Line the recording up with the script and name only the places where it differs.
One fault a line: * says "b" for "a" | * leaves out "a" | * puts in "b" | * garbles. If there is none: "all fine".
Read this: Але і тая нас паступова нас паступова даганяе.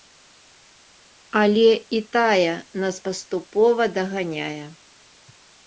* leaves out "нас паступова"